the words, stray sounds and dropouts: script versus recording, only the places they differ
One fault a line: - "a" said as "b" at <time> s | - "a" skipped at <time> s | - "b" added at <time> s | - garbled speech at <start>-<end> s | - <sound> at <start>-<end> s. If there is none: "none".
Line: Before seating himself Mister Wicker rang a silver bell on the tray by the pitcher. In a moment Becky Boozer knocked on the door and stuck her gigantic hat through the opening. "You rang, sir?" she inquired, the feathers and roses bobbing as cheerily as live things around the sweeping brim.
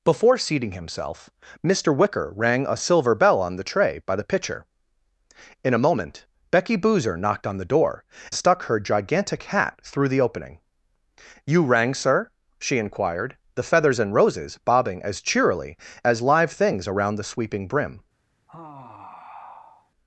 - "and" skipped at 8.0 s
- sigh at 18.5-19.9 s